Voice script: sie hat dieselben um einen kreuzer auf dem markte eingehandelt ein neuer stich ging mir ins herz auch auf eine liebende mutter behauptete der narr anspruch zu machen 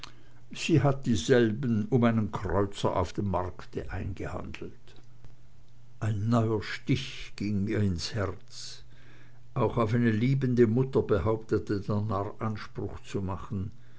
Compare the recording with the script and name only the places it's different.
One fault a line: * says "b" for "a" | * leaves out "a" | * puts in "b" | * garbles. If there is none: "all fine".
all fine